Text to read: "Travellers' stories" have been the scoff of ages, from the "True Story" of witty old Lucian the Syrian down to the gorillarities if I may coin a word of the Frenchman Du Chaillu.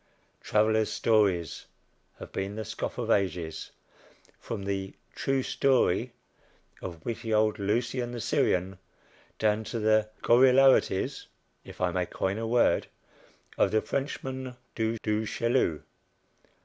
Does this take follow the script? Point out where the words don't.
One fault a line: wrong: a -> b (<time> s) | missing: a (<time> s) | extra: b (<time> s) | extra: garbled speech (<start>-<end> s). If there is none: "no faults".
extra: Du (15.0 s)